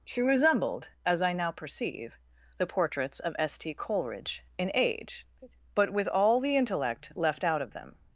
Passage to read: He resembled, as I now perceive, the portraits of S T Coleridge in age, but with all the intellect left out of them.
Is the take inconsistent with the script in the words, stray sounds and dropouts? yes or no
yes